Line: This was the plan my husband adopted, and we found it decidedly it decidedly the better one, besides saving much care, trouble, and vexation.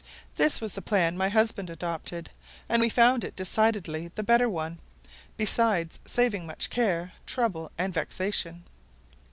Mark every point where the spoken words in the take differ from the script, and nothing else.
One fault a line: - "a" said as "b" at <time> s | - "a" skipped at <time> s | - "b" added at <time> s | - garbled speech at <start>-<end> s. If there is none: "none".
- "it decidedly" skipped at 4.1 s